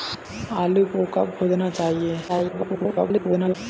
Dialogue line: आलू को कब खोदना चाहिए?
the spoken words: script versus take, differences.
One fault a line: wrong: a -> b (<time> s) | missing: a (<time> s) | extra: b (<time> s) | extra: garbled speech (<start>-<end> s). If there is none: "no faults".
extra: garbled speech (2.3-3.6 s)